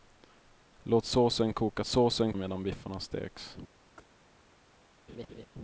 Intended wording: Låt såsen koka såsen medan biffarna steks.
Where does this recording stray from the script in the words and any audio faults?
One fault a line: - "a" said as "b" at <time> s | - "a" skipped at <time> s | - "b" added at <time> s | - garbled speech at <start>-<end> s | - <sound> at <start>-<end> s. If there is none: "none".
- chirp at 4.0-4.1 s
- laugh at 5.1-5.5 s